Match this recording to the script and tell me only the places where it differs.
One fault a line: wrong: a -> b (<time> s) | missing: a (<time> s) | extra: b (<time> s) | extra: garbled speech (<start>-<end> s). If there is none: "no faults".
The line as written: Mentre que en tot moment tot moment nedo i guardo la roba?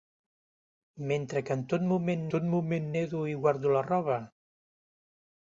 no faults